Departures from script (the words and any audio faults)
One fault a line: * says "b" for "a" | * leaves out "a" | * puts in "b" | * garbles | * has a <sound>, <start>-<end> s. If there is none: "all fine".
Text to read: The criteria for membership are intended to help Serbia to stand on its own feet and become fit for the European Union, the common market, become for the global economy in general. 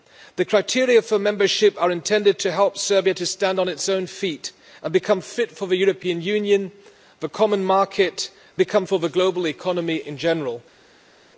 all fine